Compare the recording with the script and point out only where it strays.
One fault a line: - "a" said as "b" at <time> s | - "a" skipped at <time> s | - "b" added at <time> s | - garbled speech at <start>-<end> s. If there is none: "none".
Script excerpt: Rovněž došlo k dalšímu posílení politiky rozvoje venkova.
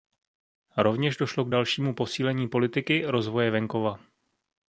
none